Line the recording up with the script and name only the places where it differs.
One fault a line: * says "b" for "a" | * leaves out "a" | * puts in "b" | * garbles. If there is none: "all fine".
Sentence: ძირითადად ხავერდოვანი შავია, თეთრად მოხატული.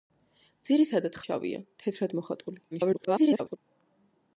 * leaves out "ხავერდოვანი"
* garbles